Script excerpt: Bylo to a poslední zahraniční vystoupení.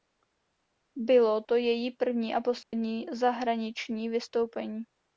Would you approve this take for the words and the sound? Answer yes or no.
no